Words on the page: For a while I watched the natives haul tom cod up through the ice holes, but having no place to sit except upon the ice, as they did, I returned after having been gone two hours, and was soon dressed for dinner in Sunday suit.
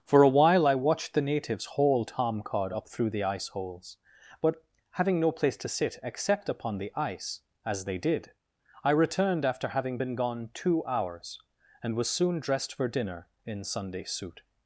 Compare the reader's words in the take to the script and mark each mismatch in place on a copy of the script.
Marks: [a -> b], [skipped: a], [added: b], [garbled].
For a while I watched the natives haul tom cod up through the ice holes, but having no place to sit except upon the ice, as they did, I returned after having been gone two hours, and was soon dressed for dinner in Sunday suit.